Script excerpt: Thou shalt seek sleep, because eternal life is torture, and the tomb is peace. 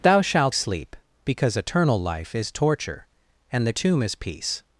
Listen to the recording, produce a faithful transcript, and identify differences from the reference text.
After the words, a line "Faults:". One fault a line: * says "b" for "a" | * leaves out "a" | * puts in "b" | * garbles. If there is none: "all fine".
Thou shalt sleep, because eternal life is torture, and the tomb is peace.
Faults:
* leaves out "seek"